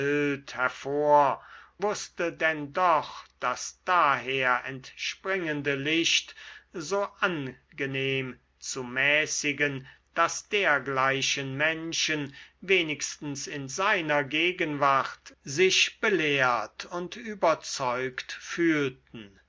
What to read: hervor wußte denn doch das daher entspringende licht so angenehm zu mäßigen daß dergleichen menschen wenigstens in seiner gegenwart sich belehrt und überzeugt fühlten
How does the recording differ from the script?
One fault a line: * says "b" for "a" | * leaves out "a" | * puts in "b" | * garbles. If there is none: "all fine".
all fine